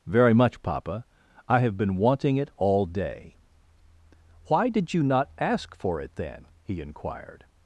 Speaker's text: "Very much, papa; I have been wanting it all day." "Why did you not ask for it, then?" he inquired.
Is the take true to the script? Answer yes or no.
yes